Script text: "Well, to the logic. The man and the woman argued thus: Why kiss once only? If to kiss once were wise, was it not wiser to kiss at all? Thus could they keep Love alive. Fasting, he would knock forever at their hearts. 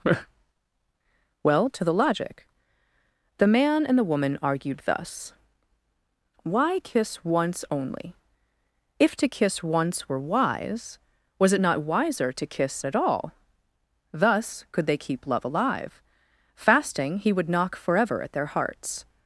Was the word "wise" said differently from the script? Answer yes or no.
no